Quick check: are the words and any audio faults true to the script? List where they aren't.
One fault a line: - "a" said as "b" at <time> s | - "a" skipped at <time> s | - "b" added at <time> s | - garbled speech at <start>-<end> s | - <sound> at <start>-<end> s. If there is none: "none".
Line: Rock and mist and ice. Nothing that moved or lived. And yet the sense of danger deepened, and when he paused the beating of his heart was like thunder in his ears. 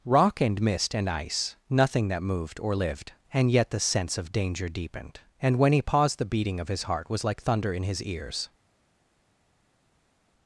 none